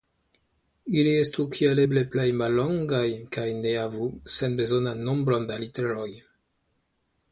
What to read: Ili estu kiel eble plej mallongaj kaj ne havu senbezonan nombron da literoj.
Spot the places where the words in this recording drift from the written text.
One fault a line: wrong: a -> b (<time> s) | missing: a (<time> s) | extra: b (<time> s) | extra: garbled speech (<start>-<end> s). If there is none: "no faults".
no faults